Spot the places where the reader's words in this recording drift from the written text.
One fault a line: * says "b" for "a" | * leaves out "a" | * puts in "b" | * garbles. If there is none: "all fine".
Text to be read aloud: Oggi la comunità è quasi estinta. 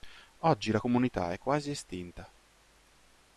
all fine